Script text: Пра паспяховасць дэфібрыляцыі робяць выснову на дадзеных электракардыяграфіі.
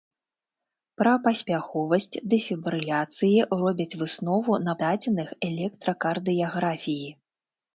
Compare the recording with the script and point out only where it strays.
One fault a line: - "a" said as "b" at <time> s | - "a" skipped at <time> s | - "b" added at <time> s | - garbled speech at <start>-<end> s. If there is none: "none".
none